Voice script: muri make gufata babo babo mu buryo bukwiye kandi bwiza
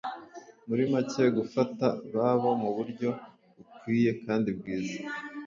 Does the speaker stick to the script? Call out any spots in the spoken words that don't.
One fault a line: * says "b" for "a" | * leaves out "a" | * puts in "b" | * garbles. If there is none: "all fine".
* leaves out "babo"